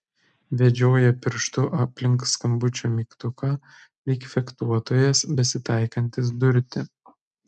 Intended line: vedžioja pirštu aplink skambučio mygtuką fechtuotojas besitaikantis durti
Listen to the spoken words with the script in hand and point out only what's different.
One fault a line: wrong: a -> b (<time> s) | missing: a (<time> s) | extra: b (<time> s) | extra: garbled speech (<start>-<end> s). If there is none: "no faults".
extra: lyg (4.1 s)